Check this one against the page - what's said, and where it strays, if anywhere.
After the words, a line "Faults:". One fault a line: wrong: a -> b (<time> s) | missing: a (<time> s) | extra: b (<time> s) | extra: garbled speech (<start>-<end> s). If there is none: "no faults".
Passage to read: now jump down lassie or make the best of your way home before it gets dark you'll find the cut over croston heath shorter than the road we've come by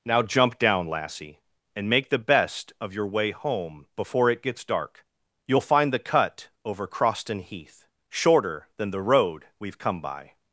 now jump down lassie and make the best of your way home before it gets dark you'll find the cut over croston heath shorter than the road we've come by
Faults:
wrong: or -> and (1.8 s)